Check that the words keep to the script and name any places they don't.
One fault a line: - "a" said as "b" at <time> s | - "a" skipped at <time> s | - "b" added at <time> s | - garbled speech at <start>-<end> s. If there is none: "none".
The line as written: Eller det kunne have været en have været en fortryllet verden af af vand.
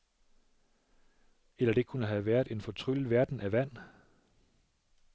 - "have været en" skipped at 2.6 s
- "af" skipped at 3.5 s